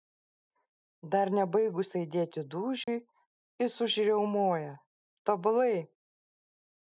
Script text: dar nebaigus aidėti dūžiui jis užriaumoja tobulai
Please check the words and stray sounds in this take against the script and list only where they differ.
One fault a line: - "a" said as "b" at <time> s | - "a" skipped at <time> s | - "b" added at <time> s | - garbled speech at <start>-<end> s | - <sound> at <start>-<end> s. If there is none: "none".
- dropout at 2.8-2.9 s